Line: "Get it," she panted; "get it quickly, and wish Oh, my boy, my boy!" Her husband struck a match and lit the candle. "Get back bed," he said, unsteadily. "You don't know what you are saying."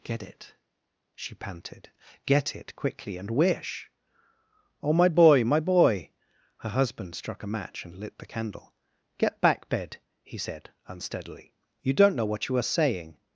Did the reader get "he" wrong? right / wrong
right